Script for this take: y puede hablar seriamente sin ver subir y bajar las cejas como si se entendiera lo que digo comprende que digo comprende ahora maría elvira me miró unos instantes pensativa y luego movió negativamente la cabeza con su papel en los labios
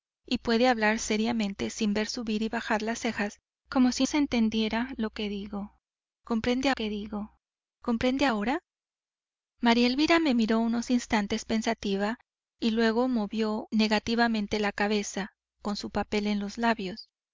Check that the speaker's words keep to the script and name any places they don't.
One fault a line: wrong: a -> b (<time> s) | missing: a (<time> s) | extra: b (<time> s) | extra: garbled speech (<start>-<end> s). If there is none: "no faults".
no faults